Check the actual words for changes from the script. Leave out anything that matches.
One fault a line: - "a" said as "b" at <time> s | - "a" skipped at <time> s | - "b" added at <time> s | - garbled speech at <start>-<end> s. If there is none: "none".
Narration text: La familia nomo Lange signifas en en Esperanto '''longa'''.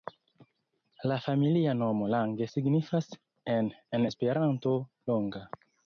none